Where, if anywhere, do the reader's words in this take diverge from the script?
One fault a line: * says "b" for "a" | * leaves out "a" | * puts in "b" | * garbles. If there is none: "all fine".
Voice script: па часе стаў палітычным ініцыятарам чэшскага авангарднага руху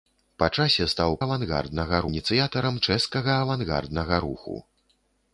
* says "авангарднага" for "палітычным"